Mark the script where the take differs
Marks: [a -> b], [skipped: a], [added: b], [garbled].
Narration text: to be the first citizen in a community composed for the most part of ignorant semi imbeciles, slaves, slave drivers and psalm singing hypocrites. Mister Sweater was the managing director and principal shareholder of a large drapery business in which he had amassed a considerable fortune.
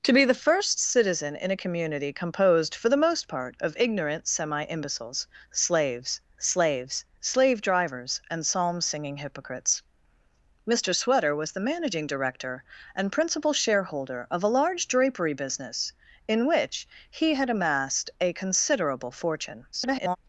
to be the first citizen in a community composed for the most part of ignorant semi imbeciles, slaves, [added: slaves] slave drivers and psalm singing hypocrites. Mister Sweater was the managing director and principal shareholder of a large drapery business in which he had amassed a considerable fortune. [garbled]